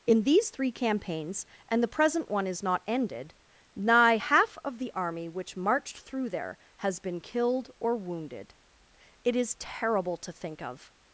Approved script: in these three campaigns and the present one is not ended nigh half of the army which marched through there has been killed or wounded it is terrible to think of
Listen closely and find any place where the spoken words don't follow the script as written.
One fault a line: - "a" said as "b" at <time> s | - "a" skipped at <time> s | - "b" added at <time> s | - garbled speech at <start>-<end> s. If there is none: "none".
none